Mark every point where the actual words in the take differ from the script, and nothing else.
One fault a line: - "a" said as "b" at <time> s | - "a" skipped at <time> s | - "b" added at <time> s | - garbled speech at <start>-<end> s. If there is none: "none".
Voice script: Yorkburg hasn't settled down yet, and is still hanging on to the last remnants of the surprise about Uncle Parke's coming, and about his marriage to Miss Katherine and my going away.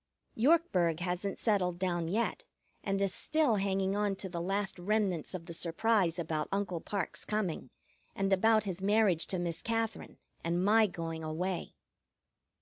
none